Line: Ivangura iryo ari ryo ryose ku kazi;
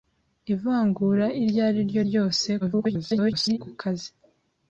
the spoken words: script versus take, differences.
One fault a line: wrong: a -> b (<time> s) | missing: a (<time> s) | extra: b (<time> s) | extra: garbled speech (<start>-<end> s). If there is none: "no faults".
extra: garbled speech (2.6-3.6 s)